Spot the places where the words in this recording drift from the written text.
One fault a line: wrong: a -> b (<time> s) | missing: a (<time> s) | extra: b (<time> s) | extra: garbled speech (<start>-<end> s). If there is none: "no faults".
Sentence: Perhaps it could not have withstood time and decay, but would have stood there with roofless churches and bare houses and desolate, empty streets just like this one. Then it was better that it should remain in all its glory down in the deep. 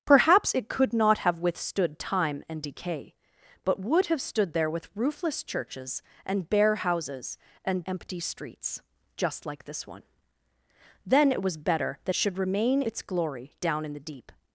missing: desolate (7.9 s)
missing: it (12.1 s)
missing: in all (12.8 s)